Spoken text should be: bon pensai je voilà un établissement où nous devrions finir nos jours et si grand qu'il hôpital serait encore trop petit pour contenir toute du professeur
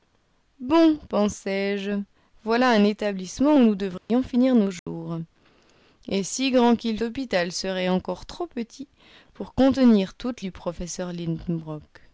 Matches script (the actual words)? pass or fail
pass